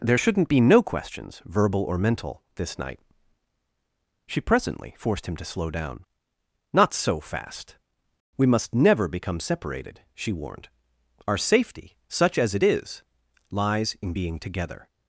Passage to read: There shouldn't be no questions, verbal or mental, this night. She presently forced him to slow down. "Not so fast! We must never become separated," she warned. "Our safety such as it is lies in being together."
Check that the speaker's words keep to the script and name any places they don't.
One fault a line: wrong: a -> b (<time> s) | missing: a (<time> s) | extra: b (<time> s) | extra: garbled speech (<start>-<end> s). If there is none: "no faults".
no faults